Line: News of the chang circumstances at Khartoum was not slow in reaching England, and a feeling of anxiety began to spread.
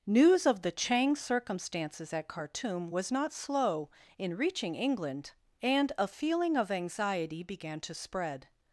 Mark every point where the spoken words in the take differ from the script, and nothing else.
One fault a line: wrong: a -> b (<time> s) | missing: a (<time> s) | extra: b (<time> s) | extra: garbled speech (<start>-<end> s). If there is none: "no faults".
no faults